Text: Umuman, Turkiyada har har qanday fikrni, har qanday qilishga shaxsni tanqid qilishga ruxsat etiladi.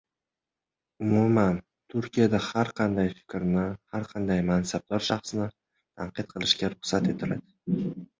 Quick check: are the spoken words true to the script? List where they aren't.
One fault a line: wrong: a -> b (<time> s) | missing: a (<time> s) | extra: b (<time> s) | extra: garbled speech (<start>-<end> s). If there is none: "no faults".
missing: har (2.7 s)
wrong: qilishga -> mansabdor (4.5 s)